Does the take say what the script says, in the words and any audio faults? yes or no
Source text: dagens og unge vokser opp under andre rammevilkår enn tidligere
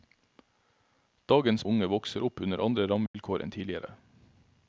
no